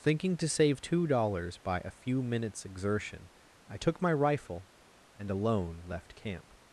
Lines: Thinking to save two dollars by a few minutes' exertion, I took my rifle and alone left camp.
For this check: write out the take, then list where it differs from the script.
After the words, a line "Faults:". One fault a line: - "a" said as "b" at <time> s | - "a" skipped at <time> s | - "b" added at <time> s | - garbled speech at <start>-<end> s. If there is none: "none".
Thinking to save two dollars by a few minutes' exertion, I took my rifle and alone left camp.
Faults:
none